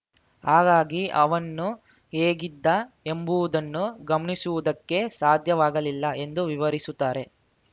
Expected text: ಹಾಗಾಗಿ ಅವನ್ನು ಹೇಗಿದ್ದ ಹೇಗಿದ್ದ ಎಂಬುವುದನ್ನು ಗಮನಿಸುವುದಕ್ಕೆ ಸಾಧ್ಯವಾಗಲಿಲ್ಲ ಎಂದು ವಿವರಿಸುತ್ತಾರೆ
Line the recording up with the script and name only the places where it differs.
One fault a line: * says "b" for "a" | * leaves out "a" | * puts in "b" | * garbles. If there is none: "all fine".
* leaves out "ಹೇಗಿದ್ದ"